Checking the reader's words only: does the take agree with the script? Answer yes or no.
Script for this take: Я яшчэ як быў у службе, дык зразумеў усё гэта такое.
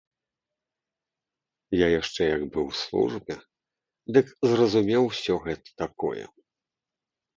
yes